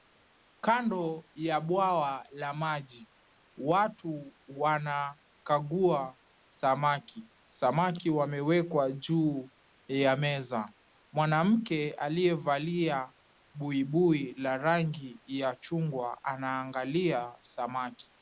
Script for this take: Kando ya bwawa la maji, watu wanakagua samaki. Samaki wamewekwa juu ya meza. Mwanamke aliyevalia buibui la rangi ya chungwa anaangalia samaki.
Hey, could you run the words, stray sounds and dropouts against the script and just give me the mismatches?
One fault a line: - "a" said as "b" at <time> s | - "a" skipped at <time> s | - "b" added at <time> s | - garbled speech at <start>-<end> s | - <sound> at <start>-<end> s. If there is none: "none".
none